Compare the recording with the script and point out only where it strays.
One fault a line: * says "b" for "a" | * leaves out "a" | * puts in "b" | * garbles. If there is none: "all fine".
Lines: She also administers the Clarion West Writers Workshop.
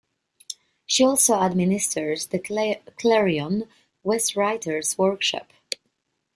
all fine